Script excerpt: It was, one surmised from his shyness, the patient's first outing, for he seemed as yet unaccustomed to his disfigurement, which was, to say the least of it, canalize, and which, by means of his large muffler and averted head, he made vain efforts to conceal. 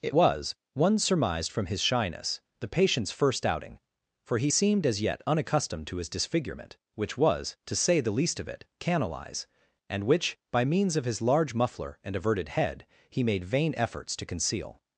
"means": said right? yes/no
yes